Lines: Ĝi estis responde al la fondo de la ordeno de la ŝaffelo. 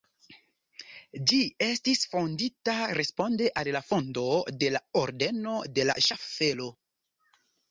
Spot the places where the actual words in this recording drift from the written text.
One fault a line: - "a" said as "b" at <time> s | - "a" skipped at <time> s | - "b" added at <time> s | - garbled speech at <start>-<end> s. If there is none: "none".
- "fondita" added at 2.1 s